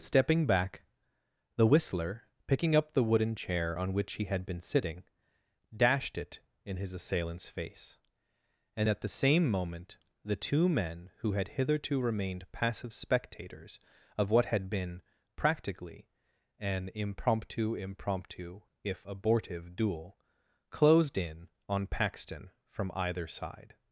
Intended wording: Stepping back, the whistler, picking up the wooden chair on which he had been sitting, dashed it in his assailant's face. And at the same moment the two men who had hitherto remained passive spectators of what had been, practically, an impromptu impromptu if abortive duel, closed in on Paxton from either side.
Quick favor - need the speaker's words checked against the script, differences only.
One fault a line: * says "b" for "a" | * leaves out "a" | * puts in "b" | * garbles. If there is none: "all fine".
all fine